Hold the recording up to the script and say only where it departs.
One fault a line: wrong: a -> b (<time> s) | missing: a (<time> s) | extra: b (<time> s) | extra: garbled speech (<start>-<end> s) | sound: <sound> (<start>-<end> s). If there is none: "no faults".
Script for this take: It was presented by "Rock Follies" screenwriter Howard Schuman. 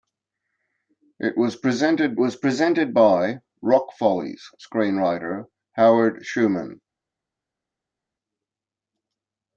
extra: was presented (2.2 s)